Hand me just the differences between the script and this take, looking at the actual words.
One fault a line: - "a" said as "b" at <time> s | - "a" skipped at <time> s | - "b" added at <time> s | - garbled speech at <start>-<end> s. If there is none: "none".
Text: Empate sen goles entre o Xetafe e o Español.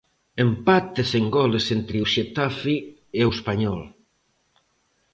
none